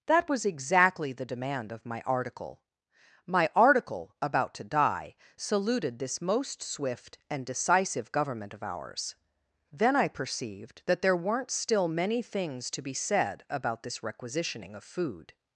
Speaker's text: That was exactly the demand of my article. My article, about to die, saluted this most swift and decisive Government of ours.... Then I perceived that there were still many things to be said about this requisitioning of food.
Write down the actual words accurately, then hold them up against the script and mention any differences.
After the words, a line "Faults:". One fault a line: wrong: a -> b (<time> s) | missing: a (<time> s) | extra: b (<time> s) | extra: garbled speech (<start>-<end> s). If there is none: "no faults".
That was exactly the demand of my article. My article, about to die, saluted this most swift and decisive Government of ours.... Then I perceived that there weren't still many things to be said about this requisitioning of food.
Faults:
wrong: were -> weren't (11.2 s)